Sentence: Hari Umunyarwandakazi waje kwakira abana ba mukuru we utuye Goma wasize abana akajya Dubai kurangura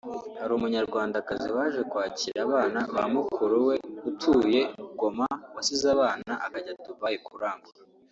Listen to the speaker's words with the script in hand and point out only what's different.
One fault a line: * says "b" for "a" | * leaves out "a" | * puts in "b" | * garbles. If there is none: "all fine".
all fine